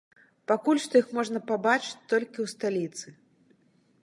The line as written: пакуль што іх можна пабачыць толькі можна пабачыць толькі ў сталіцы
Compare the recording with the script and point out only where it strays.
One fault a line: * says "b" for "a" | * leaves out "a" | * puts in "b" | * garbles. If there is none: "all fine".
* leaves out "можна пабачыць толькі"